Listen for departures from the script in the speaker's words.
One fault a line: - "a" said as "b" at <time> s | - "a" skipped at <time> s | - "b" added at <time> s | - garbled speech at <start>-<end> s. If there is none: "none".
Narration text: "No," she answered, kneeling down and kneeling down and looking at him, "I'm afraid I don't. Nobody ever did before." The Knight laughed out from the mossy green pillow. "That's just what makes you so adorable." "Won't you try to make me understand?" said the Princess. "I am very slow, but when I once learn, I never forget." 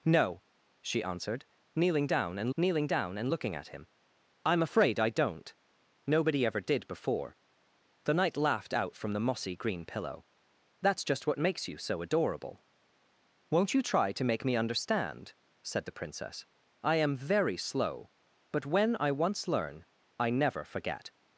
none